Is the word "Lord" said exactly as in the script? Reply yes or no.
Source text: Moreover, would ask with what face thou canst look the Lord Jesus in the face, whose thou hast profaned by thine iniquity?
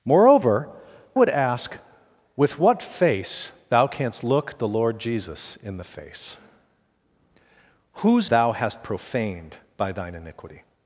yes